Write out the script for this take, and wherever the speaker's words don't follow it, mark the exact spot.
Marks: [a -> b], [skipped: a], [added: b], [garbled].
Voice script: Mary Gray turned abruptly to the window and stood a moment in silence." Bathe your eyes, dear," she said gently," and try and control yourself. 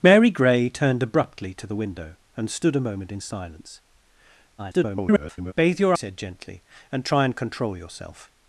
Mary Gray turned abruptly to the window and stood a moment in silence." [garbled] Bathe your [skipped: eyes, dear," she] said gently," and try and control yourself.